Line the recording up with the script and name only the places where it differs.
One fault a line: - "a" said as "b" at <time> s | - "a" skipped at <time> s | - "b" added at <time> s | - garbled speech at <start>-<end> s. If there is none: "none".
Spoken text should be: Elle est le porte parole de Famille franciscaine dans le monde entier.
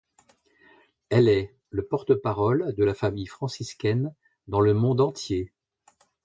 - "la" added at 2.8 s